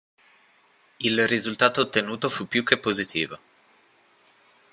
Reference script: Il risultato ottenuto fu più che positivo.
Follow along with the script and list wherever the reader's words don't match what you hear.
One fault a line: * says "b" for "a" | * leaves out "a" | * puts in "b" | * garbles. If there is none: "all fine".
all fine